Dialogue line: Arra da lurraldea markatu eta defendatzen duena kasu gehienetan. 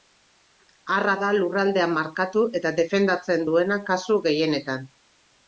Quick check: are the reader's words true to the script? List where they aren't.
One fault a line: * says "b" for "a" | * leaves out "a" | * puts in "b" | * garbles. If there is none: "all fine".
all fine